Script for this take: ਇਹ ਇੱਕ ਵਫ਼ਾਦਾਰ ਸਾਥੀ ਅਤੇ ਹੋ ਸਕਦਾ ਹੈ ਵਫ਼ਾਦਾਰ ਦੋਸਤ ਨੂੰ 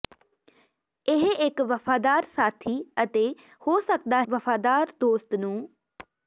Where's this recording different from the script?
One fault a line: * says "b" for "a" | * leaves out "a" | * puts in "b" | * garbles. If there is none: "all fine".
* leaves out "ਹੈ"